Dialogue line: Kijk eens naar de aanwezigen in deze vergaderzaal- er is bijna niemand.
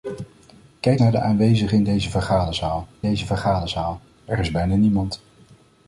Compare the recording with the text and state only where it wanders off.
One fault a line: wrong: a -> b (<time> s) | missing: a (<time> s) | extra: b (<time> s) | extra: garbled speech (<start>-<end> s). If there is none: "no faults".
missing: eens (1.0 s)
extra: deze vergaderzaal (3.0 s)